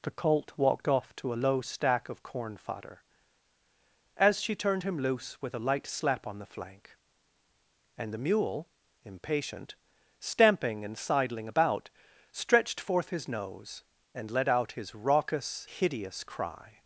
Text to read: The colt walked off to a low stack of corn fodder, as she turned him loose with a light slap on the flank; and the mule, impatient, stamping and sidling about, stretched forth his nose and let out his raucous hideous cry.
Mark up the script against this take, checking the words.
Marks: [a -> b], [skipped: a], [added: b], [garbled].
The colt walked off to a low stack of corn fodder, as she turned him loose with a light slap on the flank; and the mule, impatient, stamping and sidling about, stretched forth his nose and let out his raucous hideous cry.